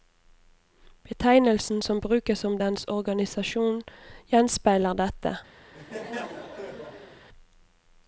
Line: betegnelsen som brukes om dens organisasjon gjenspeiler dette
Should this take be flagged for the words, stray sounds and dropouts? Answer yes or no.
yes